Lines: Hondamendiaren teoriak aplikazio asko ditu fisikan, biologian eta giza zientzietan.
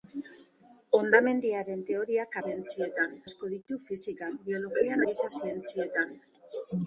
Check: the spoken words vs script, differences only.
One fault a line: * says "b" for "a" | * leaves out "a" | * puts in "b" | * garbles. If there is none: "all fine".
* says "zientzietan" for "aplikazio"
* leaves out "eta"